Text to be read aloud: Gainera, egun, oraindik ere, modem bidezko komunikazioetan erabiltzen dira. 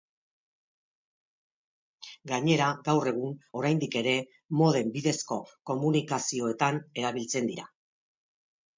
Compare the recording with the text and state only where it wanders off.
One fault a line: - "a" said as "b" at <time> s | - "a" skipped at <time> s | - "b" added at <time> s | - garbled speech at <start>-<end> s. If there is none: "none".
- "gaur" added at 2.9 s